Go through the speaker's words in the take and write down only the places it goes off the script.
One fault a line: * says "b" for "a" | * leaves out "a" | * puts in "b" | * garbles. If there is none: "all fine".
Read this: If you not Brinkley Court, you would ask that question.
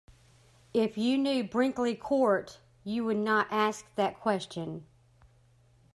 * says "knew" for "not"
* puts in "not"